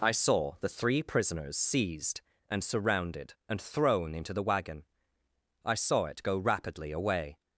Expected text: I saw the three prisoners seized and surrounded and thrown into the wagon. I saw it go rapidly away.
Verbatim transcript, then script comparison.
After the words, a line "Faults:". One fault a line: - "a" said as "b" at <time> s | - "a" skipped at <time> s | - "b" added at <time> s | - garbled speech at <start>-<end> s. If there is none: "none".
I saw the three prisoners seized and surrounded and thrown into the wagon. I saw it go rapidly away.
Faults:
none